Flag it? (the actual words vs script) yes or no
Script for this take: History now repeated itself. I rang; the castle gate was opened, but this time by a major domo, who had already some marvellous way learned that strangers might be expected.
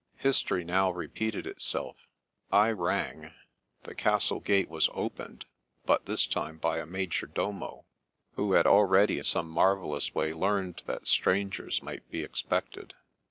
no